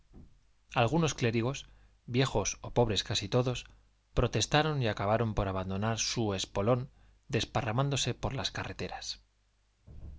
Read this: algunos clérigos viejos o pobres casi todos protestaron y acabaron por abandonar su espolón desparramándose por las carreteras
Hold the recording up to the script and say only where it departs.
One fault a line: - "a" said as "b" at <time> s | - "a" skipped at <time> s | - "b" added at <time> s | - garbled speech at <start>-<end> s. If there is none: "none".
none